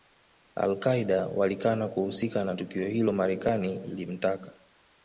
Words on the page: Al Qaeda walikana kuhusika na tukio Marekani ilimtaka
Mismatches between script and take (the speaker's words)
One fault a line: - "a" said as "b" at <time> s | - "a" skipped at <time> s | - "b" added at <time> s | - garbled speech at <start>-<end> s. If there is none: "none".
- "hilo" added at 2.9 s